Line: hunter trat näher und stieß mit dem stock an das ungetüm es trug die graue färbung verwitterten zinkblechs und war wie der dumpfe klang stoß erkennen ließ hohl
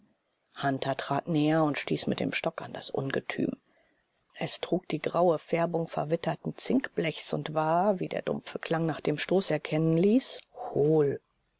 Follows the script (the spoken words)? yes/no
no